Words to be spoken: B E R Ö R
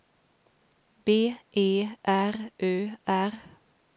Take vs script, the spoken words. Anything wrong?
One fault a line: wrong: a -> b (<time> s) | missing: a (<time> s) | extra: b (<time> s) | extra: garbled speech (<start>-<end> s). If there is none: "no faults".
no faults